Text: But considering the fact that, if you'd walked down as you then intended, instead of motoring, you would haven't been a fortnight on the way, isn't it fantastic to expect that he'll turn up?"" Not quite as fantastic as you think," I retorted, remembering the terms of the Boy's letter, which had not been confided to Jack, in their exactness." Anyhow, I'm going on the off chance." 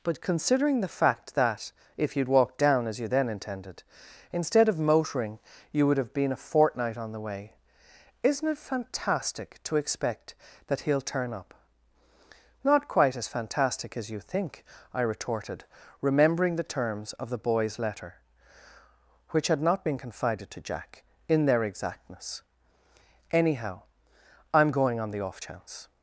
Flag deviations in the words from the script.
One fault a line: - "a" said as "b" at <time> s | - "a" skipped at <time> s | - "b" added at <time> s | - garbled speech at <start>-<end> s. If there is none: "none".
- "haven't" said as "have" at 6.0 s